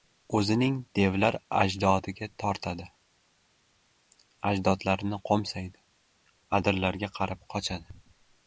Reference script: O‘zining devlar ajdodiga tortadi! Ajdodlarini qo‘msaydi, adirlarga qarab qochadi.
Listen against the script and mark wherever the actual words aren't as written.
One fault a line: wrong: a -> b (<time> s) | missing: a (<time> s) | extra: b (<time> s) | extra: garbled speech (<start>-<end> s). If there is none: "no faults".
no faults